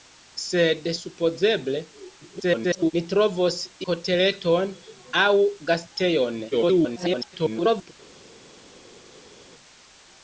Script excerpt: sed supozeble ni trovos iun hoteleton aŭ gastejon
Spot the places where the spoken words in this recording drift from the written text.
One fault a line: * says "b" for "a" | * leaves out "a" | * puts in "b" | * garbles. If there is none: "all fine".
* garbles
* leaves out "iun"
* garbles